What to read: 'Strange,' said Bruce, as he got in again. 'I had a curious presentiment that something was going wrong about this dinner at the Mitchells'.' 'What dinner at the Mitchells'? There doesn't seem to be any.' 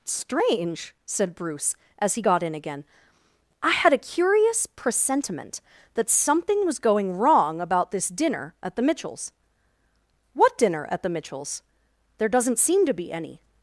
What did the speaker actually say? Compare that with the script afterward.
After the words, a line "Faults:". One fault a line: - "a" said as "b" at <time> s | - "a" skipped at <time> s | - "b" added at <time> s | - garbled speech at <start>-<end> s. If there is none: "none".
'Strange,' said Bruce, as he got in again. 'I had a curious presentiment that something was going wrong about this dinner at the Mitchells'.' 'What dinner at the Mitchells'? There doesn't seem to be any.'
Faults:
none